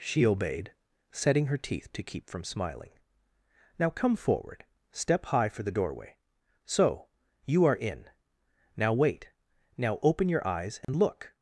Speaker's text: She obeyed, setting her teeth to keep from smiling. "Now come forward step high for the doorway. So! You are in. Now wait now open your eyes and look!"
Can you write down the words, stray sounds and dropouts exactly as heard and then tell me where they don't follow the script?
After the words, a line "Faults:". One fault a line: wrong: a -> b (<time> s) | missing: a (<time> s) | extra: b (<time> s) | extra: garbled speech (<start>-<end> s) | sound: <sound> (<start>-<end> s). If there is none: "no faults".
She obeyed, setting her teeth to keep from smiling. "Now come forward step high for the doorway. So! You are in. Now wait now open your eyes and look!"
Faults:
sound: dropout (10.8-10.9 s)